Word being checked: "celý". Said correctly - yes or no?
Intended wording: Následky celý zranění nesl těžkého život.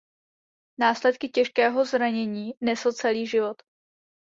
no